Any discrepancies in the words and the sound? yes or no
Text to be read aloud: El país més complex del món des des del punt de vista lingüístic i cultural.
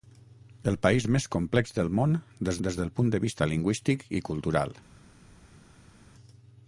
no